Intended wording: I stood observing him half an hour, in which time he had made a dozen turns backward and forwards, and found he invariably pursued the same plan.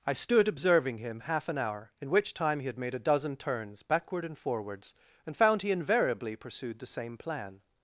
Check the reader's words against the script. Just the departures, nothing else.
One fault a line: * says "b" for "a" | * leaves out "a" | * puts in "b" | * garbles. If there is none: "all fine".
all fine